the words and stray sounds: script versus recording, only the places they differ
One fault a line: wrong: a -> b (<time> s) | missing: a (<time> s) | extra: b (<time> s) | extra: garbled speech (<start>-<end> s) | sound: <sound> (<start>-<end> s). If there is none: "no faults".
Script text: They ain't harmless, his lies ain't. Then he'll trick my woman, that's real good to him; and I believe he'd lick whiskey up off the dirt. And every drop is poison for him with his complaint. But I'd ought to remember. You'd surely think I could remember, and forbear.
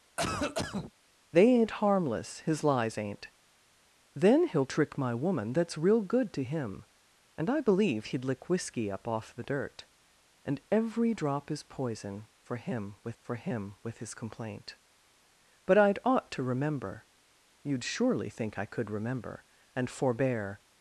sound: cough (0.2-0.9 s)
extra: for him with (13.2 s)